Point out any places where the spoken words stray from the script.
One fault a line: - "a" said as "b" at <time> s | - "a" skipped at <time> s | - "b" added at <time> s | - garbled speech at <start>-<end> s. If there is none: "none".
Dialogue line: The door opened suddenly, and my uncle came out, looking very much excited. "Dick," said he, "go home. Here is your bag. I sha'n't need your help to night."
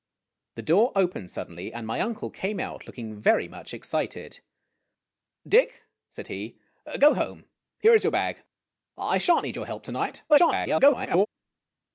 - garbled speech at 10.3-11.3 s